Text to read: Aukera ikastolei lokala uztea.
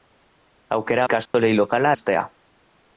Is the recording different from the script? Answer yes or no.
no